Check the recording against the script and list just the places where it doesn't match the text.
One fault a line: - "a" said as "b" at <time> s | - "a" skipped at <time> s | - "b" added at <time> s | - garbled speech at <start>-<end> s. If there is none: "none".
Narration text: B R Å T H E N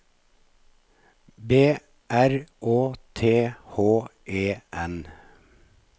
none